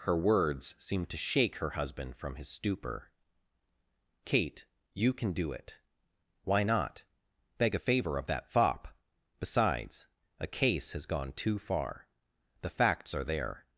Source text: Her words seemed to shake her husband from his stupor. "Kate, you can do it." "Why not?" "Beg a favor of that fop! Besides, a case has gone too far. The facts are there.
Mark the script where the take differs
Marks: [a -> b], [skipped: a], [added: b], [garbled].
Her words seemed to shake her husband from his stupor. "Kate, you can do it." "Why not?" "Beg a favor of that fop! Besides, a case has gone too far. The facts are there.